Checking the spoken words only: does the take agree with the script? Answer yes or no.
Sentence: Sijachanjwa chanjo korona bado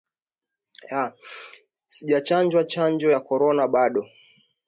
no